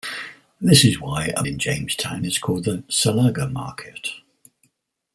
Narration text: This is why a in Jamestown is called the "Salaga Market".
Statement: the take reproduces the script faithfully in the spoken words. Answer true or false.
true